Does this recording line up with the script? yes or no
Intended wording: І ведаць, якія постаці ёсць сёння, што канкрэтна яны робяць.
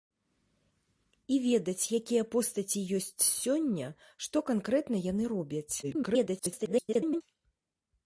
no